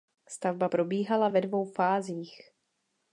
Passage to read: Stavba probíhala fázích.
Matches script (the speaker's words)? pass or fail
fail